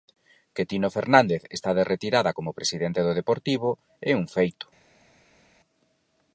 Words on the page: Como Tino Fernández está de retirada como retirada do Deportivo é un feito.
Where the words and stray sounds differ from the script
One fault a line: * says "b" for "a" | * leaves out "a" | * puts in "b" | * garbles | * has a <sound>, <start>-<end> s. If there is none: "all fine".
* says "Que" for "Como"
* says "presidente" for "retirada"